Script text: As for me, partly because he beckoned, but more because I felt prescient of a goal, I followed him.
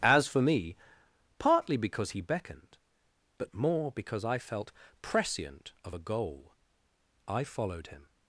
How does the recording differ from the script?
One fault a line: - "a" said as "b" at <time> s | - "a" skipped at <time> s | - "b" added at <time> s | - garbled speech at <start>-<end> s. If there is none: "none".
none